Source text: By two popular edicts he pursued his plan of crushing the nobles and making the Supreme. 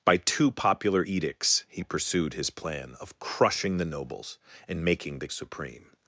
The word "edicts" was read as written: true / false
true